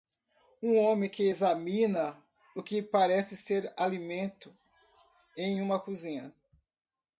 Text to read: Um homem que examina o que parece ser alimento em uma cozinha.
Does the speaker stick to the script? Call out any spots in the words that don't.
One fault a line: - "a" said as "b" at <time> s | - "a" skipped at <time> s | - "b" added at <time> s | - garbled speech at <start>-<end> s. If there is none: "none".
none